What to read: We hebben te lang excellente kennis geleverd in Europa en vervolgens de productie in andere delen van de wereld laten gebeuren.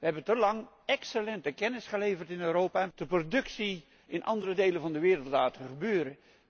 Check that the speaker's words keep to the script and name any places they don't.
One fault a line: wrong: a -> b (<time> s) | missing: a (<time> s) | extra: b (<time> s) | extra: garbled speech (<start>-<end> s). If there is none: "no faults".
missing: vervolgens (2.9 s)